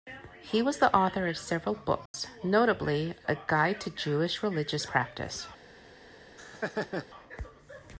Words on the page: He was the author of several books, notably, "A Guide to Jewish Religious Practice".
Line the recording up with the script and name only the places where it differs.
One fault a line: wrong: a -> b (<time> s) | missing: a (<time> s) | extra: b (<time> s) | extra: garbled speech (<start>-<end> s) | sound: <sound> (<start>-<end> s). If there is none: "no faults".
sound: dropout (2.1-2.1 s)
sound: laugh (6.4-7.1 s)